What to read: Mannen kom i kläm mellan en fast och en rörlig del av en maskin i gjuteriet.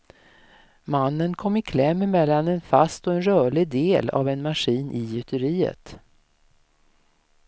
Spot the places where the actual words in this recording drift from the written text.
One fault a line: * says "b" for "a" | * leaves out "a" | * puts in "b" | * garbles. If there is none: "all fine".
all fine